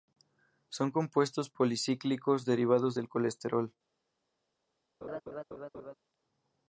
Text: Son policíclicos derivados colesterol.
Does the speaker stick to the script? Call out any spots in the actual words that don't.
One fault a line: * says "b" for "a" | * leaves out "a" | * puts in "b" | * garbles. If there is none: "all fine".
* puts in "compuestos"
* puts in "del"